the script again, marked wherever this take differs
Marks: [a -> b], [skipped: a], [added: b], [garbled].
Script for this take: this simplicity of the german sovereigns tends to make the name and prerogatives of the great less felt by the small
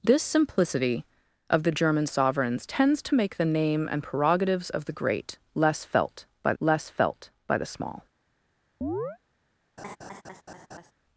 this simplicity of the german sovereigns tends to make the name and prerogatives of the great less felt by [added: less felt by] the small